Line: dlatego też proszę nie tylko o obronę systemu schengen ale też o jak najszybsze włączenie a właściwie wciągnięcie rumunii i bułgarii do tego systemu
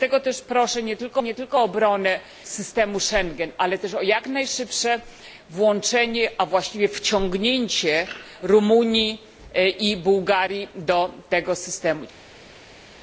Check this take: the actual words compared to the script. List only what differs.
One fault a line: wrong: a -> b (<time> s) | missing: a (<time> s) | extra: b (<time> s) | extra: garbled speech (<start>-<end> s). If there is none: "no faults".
extra: nie tylko (1.2 s)